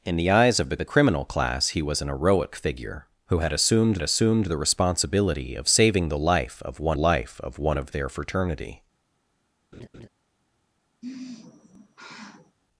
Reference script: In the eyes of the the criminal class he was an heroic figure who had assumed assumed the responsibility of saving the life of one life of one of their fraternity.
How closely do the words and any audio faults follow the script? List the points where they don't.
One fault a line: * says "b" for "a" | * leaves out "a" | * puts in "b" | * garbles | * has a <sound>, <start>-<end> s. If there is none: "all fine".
* has a laugh, 9.7-10.1 s
* has a sigh, 11.0-12.6 s